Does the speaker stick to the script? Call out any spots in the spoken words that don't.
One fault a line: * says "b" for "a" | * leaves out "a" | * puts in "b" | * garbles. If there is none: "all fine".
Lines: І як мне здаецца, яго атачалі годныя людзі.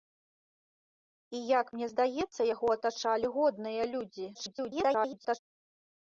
* garbles